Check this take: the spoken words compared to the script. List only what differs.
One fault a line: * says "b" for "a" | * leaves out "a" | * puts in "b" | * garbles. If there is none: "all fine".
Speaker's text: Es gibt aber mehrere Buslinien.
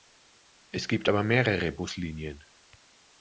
all fine